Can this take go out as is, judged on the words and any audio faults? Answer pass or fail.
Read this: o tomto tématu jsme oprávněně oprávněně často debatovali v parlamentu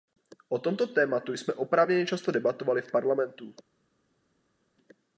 fail